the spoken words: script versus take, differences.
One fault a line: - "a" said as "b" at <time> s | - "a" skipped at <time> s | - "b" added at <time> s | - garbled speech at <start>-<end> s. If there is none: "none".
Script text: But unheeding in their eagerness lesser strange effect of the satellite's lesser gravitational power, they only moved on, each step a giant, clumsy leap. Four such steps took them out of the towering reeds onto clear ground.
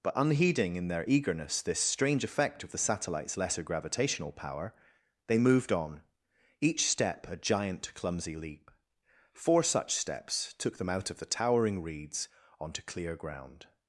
- "lesser" said as "this" at 1.6 s
- "only" skipped at 5.4 s